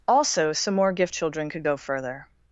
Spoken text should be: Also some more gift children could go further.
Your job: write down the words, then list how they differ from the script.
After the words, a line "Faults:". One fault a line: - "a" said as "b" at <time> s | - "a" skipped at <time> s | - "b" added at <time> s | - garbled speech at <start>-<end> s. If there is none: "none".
Also some more gift children could go further.
Faults:
none